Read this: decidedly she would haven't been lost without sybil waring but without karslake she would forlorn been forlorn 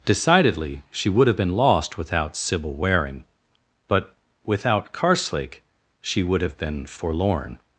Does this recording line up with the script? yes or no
no